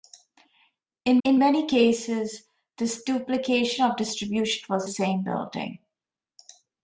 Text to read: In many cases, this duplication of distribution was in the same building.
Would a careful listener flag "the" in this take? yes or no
yes